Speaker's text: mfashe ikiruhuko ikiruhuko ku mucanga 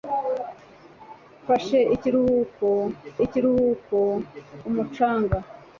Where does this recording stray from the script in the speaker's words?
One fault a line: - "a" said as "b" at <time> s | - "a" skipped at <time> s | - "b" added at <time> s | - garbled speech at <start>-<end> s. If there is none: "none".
none